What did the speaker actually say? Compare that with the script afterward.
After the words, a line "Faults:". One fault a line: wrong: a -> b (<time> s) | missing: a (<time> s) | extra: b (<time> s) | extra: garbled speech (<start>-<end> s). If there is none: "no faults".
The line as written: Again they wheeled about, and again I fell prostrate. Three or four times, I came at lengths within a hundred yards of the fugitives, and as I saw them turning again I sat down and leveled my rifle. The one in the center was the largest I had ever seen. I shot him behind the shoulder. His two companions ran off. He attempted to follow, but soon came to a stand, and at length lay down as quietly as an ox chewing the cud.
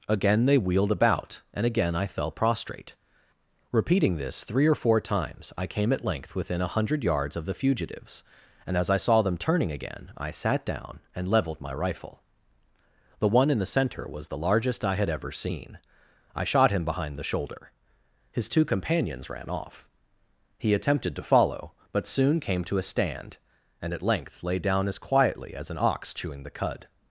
Again they wheeled about, and again I fell prostrate. Repeating this three or four times, I came at length within a hundred yards of the fugitives, and as I saw them turning again I sat down and leveled my rifle. The one in the center was the largest I had ever seen. I shot him behind the shoulder. His two companions ran off. He attempted to follow, but soon came to a stand, and at length lay down as quietly as an ox chewing the cud.
Faults:
extra: Repeating this (3.7 s)
wrong: lengths -> length (6.0 s)